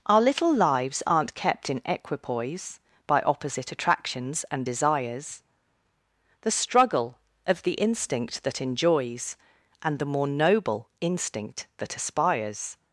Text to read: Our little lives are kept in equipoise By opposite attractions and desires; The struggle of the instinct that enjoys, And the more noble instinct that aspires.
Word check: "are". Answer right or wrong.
wrong